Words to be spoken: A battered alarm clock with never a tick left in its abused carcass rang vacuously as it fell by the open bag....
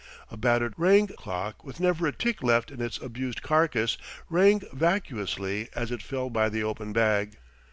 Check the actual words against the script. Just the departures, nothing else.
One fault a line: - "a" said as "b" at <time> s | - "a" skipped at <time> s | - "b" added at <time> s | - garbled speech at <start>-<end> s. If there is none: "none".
- "alarm" said as "rang" at 0.8 s